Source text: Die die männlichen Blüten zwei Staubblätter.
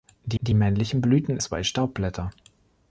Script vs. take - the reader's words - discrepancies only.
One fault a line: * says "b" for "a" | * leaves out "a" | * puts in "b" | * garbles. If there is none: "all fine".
all fine